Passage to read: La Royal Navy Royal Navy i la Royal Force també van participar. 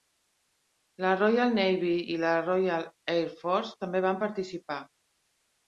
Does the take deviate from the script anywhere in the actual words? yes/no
yes